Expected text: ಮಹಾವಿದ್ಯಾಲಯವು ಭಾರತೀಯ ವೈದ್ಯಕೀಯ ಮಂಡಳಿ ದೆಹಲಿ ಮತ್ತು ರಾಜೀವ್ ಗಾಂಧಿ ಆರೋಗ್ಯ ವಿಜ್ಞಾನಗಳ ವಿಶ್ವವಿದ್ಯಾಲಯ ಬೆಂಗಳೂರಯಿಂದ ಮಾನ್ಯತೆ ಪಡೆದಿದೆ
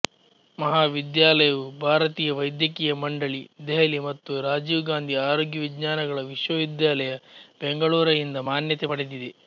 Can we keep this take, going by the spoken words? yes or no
yes